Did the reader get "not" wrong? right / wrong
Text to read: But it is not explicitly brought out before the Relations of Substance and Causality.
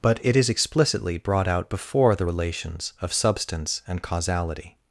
wrong